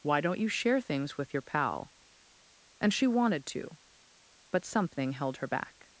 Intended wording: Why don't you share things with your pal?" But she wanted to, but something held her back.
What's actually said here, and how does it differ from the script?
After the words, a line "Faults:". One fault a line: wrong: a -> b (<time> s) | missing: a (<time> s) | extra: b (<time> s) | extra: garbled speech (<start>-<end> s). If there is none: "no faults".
Why don't you share things with your pal?" And she wanted to, but something held her back.
Faults:
wrong: But -> And (2.8 s)